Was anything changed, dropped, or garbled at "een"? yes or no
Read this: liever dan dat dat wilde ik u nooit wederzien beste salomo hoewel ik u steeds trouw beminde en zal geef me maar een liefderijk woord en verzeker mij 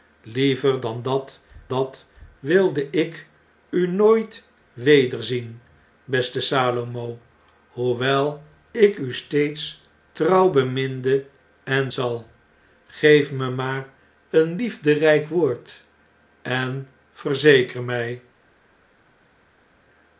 no